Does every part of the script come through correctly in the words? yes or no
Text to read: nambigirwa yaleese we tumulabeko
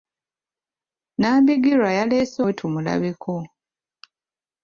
yes